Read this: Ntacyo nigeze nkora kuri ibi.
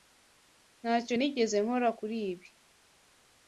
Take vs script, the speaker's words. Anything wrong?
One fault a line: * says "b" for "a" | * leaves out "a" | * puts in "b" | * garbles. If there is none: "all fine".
all fine